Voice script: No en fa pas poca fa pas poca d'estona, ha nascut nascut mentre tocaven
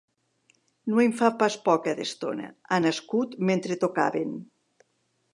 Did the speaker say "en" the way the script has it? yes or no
yes